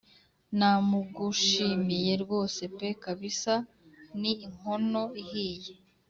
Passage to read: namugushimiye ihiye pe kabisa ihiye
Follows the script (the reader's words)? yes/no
no